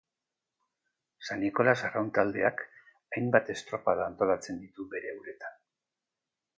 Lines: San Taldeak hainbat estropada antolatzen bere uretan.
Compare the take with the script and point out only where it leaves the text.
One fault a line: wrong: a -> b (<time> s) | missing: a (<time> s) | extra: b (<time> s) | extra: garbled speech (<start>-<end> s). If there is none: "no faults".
extra: Nikolas Arraun (1.4 s)
extra: ditu (4.7 s)